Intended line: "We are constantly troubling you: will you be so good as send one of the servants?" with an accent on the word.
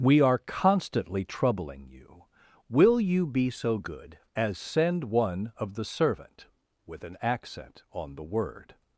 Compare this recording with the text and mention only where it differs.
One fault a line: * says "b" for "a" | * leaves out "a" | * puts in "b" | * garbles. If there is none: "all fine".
* says "servant" for "servants"